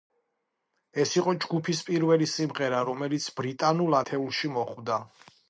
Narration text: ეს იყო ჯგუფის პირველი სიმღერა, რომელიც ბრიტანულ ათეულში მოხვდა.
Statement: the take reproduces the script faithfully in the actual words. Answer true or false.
true